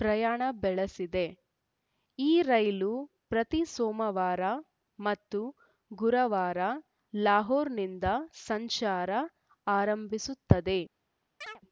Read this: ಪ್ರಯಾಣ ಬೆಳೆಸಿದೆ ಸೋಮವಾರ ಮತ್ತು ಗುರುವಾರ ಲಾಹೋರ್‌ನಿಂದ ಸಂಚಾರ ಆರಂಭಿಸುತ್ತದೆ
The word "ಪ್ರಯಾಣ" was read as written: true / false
true